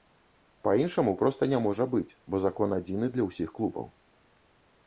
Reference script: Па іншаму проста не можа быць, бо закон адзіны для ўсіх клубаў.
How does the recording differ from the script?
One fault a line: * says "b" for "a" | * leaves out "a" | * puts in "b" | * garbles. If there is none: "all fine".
all fine